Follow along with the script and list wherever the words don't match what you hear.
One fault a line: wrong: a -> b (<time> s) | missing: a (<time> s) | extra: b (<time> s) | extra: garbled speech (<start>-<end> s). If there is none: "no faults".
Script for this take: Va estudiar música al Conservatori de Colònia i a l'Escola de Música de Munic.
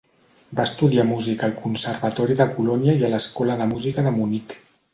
no faults